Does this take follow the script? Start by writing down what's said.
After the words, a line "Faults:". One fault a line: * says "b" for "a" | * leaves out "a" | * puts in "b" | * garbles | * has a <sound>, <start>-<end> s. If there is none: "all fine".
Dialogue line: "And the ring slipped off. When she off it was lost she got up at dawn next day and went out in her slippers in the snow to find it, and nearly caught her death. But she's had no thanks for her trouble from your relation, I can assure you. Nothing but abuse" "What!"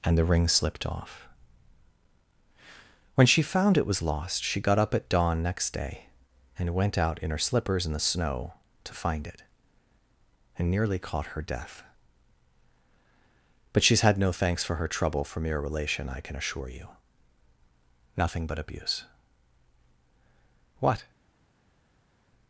"And the ring slipped off. When she found it was lost she got up at dawn next day and went out in her slippers in the snow to find it, and nearly caught her death. But she's had no thanks for her trouble from your relation, I can assure you. Nothing but abuse" "What!"
Faults:
* says "found" for "off"